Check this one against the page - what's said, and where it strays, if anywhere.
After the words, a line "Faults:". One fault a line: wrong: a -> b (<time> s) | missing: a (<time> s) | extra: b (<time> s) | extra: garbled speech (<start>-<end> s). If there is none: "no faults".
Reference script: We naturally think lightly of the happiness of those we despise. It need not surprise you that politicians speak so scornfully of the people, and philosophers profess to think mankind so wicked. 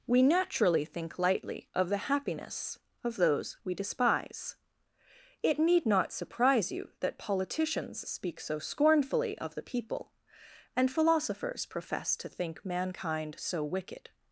We naturally think lightly of the happiness of those we despise. It need not surprise you that politicians speak so scornfully of the people, and philosophers profess to think mankind so wicked.
Faults:
no faults